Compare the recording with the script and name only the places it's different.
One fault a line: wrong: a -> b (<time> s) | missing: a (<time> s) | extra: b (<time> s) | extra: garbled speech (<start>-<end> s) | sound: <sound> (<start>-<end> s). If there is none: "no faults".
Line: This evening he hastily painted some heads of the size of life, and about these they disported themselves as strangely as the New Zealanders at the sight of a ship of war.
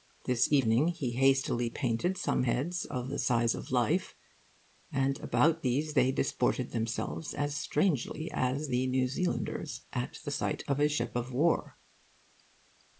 no faults